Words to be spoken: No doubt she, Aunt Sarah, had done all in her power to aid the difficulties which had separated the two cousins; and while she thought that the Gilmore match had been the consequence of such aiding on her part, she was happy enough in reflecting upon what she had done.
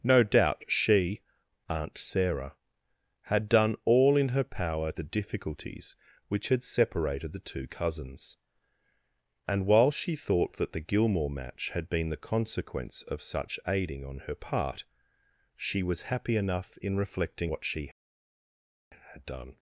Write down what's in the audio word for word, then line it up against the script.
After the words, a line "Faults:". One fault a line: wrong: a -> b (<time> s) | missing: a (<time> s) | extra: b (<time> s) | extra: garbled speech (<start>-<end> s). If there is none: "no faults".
No doubt she, Aunt Sarah, had done all in her power the difficulties which had separated the two cousins; and while she thought that the Gilmore match had been the consequence of such aiding on her part, she was happy enough in reflecting what she had done.
Faults:
missing: to aid (4.9 s)
missing: upon (17.5 s)